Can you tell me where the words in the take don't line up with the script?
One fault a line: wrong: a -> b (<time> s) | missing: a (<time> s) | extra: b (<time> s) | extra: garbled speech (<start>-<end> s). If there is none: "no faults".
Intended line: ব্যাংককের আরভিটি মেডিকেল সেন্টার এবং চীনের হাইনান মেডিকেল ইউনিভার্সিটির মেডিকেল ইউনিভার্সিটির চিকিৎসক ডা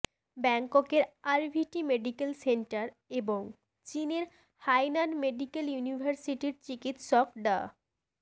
missing: মেডিকেল ইউনিভার্সিটির (6.5 s)